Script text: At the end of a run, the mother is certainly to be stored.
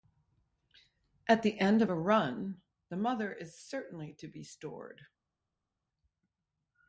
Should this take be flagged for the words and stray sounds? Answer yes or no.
no